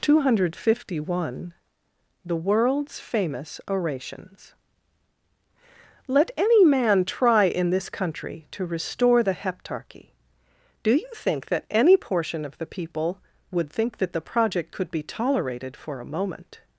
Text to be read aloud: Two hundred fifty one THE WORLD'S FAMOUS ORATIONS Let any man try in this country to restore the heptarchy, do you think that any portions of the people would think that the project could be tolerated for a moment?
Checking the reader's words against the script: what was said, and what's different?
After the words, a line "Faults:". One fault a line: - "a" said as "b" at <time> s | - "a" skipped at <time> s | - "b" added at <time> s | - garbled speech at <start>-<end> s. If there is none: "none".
Two hundred fifty one THE WORLD'S FAMOUS ORATIONS Let any man try in this country to restore the heptarchy, do you think that any portion of the people would think that the project could be tolerated for a moment?
Faults:
- "portions" said as "portion" at 12.0 s